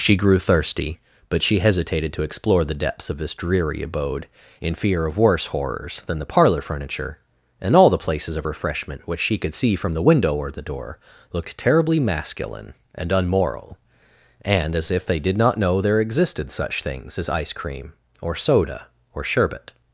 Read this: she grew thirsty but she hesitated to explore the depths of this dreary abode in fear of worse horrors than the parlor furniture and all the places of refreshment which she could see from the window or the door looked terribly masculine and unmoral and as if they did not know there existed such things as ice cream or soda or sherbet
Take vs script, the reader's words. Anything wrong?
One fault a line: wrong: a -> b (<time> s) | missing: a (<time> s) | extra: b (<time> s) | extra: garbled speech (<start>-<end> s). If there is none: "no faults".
no faults